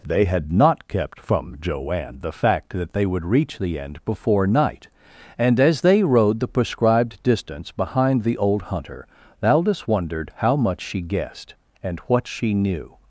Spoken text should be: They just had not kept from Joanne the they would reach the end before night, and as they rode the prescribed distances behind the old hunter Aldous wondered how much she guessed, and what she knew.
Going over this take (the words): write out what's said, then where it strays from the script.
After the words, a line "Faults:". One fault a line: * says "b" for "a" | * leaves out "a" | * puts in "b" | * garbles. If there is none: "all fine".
They had not kept from Joanne the fact that they would reach the end before night, and as they rode the prescribed distance behind the old hunter Aldous wondered how much she guessed, and what she knew.
Faults:
* leaves out "just"
* puts in "fact that"
* says "distance" for "distances"